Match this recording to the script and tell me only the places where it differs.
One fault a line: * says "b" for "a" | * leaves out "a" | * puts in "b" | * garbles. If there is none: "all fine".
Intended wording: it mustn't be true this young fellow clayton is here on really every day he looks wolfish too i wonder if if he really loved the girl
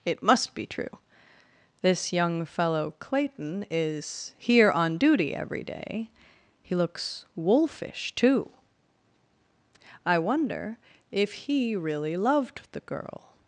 * says "must" for "mustn't"
* says "duty" for "really"
* leaves out "if"